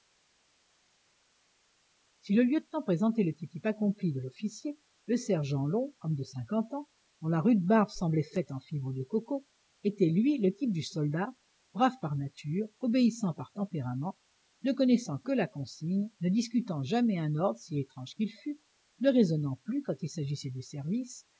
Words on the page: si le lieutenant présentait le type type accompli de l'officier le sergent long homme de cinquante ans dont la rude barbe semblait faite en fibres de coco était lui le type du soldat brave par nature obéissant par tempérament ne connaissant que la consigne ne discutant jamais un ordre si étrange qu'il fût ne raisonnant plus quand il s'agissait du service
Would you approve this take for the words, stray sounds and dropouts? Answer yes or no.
yes